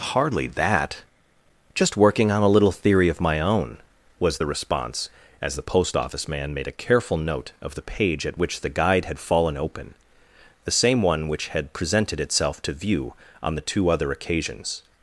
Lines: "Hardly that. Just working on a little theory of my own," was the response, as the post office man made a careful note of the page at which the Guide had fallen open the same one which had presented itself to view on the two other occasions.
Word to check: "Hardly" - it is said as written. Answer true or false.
true